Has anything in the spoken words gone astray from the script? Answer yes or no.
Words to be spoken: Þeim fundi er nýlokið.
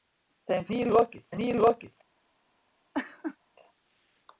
yes